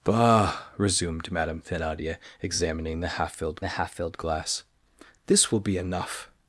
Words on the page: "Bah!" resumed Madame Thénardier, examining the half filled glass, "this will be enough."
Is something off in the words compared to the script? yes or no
yes